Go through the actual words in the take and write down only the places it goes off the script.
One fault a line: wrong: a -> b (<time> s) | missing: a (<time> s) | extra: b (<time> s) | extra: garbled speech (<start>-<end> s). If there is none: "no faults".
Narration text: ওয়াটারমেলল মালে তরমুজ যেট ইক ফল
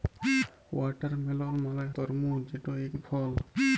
no faults